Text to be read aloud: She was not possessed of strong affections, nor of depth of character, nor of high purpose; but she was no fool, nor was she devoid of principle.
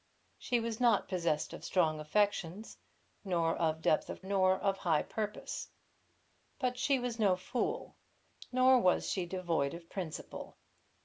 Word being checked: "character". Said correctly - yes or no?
no